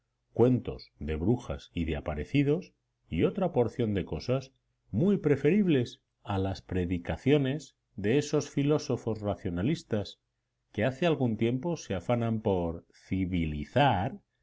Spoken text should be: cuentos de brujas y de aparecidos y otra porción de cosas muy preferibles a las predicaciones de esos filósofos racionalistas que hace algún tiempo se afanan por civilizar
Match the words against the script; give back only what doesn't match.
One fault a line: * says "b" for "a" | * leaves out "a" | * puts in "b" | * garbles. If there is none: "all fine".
all fine